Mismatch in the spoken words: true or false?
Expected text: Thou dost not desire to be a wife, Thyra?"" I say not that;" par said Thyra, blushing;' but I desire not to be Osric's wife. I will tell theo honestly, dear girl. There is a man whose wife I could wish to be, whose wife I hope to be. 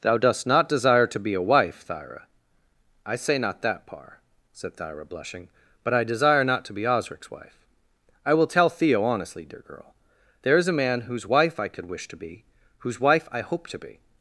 false